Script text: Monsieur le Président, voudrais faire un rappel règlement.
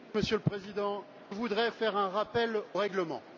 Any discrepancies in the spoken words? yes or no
no